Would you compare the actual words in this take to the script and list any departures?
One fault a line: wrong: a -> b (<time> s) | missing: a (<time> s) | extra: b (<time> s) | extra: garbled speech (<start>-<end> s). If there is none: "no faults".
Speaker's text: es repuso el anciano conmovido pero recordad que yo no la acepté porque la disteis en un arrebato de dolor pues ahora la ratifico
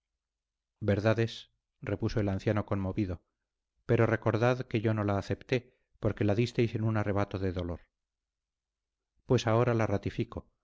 no faults